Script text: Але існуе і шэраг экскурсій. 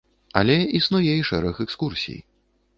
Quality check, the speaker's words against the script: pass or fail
pass